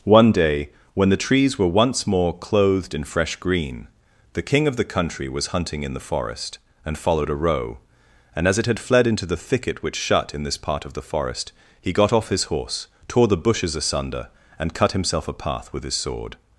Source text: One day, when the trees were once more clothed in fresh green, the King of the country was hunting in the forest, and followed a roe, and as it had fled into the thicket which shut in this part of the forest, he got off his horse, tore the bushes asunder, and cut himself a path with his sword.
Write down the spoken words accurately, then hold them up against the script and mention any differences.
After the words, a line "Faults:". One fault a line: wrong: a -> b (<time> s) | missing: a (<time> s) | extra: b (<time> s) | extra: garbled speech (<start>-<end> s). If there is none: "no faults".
One day, when the trees were once more clothed in fresh green, the King of the country was hunting in the forest, and followed a roe, and as it had fled into the thicket which shut in this part of the forest, he got off his horse, tore the bushes asunder, and cut himself a path with his sword.
Faults:
no faults